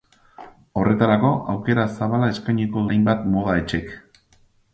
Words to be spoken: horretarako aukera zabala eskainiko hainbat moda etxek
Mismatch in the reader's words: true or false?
false